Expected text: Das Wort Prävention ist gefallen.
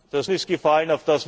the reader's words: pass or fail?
fail